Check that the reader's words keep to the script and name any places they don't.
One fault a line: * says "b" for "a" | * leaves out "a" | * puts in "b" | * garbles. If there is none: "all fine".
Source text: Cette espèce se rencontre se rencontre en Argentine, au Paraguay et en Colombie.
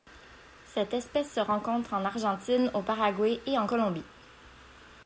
* leaves out "se rencontre"